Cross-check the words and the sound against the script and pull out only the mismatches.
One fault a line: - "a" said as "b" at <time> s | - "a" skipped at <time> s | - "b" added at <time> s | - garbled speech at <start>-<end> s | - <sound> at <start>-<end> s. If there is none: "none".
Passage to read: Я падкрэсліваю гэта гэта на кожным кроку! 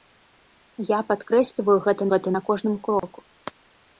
- dropout at 3.0-3.0 s